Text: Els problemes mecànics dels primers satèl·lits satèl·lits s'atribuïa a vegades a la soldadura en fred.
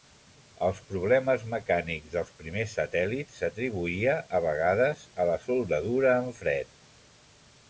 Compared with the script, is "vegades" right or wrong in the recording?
right